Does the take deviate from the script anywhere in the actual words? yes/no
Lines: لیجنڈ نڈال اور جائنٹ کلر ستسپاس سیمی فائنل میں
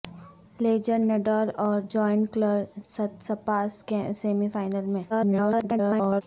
yes